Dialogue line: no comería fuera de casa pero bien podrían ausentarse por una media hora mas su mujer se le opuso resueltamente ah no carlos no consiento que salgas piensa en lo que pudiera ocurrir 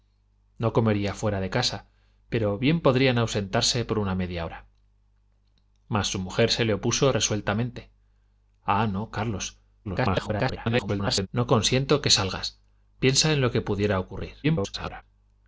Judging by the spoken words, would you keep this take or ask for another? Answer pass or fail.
fail